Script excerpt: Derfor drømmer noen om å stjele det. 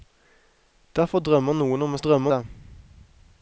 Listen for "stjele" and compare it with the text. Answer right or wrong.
wrong